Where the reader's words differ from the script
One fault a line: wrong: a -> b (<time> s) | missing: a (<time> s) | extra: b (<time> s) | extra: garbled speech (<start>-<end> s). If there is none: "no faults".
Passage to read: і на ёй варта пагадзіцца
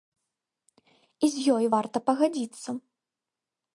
wrong: на -> з (1.4 s)